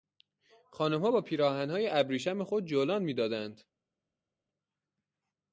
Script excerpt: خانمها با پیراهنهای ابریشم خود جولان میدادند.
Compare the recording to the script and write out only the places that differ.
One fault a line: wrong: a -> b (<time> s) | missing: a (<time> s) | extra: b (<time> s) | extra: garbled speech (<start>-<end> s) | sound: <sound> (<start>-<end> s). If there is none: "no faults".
no faults